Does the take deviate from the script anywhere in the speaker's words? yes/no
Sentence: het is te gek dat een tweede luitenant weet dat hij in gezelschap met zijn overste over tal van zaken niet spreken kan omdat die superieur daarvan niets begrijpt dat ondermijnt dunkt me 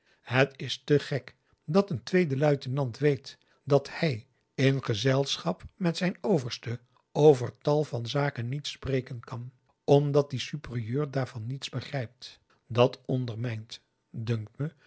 no